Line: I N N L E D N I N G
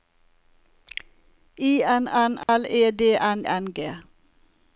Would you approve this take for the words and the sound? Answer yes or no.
no